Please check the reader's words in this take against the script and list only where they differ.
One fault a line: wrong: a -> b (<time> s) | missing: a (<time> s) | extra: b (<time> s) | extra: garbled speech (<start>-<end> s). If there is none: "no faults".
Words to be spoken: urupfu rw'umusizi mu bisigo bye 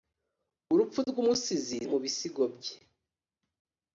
no faults